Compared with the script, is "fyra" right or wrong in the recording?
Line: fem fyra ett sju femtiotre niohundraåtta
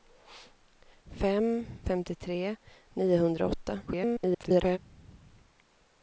wrong